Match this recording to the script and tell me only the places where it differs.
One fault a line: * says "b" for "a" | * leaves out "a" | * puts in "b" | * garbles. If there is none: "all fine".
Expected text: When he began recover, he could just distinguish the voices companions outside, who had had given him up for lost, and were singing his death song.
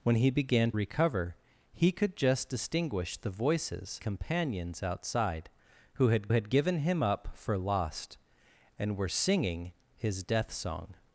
all fine